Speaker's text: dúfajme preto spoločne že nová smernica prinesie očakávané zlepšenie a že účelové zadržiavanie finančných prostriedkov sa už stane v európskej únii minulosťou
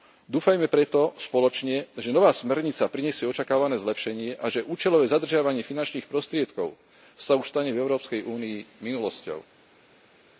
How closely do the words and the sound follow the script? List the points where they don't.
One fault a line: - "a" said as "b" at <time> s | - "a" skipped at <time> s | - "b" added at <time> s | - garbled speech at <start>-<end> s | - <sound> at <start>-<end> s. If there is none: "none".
none